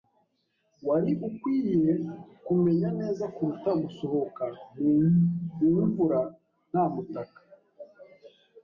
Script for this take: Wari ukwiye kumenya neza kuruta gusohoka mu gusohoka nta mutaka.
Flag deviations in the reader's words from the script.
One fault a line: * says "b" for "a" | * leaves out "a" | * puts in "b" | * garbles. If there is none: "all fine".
* says "mvura" for "gusohoka"